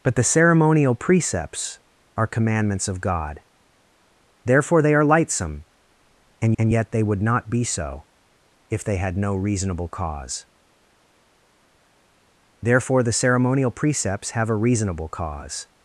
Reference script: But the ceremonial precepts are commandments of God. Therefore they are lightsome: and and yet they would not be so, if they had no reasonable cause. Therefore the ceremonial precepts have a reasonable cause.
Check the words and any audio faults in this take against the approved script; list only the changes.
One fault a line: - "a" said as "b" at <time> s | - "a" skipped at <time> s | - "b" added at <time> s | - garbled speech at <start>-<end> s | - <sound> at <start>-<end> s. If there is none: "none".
none